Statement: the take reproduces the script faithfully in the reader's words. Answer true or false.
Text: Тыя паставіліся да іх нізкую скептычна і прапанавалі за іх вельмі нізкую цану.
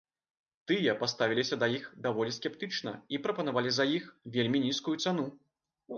false